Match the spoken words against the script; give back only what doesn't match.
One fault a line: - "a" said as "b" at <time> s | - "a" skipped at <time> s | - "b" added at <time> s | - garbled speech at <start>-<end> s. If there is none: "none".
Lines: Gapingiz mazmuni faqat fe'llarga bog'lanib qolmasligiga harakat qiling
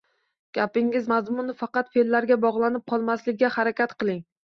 none